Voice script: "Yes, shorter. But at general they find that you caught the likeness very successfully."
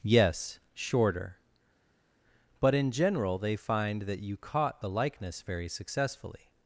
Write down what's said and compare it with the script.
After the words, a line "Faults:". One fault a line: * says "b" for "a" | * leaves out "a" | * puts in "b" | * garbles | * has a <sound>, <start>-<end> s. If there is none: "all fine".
"Yes, shorter. But in general they find that you caught the likeness very successfully."
Faults:
* says "in" for "at"